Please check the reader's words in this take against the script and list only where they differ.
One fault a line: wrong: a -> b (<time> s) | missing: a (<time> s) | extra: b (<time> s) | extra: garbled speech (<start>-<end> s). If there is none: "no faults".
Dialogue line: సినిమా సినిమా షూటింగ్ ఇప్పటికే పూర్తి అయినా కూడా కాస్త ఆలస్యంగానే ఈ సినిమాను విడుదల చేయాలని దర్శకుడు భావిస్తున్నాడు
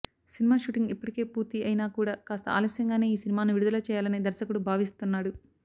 missing: సినిమా (0.6 s)